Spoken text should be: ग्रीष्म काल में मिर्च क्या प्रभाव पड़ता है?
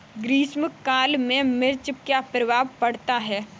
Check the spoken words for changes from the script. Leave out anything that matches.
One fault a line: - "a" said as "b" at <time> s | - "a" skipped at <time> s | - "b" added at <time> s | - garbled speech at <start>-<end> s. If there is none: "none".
none